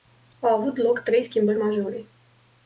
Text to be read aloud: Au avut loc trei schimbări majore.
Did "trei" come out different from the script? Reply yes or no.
no